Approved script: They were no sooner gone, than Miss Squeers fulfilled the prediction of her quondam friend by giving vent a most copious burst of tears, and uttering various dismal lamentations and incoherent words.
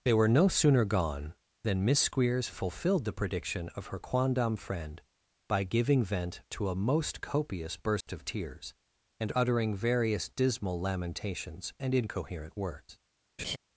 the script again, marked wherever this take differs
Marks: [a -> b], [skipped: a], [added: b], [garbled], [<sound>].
They were no sooner gone, than Miss Squeers fulfilled the prediction of her quondam friend by giving vent [added: to] a most copious burst [dropout] of tears, and uttering various dismal lamentations and incoherent words. [laugh]